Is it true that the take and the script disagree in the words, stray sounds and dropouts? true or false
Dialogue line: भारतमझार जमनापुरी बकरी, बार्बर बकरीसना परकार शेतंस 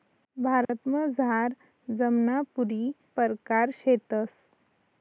true